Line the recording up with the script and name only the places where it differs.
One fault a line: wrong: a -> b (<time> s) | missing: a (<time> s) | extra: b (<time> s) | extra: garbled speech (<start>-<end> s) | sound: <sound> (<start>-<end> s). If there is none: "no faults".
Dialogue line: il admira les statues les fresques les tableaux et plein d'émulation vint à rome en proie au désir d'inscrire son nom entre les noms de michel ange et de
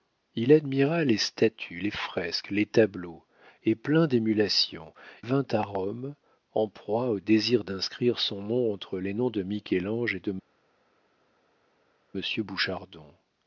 no faults